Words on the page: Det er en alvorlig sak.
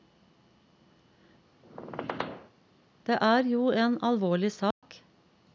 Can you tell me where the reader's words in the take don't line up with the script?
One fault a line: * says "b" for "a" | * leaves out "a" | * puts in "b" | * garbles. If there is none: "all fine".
* puts in "jo"